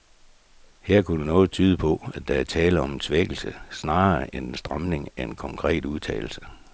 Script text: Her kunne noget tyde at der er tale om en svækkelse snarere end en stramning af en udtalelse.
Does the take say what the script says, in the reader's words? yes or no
no